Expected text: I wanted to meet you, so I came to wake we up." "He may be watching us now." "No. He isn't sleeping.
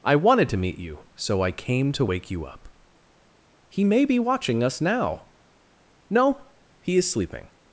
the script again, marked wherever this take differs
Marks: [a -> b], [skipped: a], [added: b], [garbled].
I wanted to meet you, so I came to wake [we -> you] up." "He may be watching us now." "No. He [isn't -> is] sleeping.